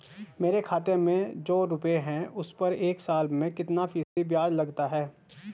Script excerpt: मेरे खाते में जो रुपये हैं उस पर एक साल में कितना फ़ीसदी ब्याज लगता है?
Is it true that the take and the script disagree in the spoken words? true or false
false